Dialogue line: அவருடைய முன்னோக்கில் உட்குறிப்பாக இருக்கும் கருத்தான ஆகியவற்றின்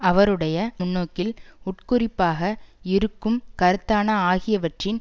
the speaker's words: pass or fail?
pass